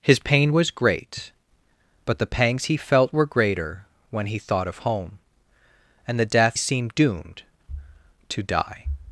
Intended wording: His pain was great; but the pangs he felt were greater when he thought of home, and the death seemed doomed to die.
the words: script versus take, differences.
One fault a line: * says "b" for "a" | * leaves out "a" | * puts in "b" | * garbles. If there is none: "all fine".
all fine